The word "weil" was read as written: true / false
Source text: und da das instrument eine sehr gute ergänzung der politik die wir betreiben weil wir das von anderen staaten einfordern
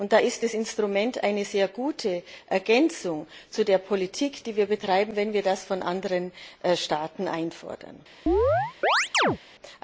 false